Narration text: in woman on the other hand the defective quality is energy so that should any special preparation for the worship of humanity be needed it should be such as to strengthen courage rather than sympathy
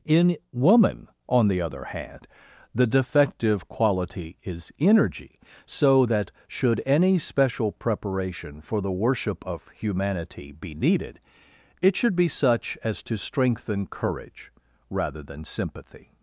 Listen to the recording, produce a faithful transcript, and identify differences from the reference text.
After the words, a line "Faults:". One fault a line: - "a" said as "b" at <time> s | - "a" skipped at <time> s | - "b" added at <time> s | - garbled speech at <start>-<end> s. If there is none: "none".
in woman on the other hand the defective quality is energy so that should any special preparation for the worship of humanity be needed it should be such as to strengthen courage rather than sympathy
Faults:
none